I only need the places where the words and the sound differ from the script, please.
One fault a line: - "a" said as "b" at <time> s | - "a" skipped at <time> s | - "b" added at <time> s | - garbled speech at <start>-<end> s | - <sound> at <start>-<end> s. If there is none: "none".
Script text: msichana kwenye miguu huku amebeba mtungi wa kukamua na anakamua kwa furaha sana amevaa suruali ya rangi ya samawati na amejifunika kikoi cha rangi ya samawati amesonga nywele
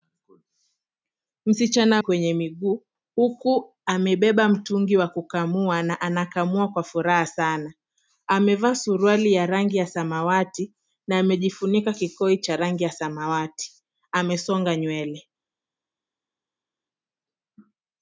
none